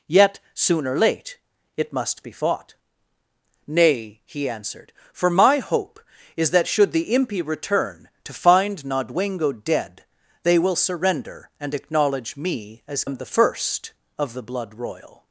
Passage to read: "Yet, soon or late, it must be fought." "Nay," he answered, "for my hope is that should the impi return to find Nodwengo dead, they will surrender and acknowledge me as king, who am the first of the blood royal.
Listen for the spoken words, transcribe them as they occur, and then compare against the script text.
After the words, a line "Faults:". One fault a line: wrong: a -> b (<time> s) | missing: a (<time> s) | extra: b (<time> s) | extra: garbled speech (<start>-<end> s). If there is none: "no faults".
"Yet, soon or late, it must be fought." "Nay," he answered, "for my hope is that should the impi return to find Nodwengo dead, they will surrender and acknowledge me as am the first of the blood royal.
Faults:
missing: king who (13.0 s)